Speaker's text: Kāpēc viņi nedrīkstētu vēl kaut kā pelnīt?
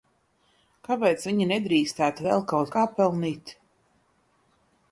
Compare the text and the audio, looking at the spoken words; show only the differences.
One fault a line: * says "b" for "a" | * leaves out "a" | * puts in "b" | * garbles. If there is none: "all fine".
all fine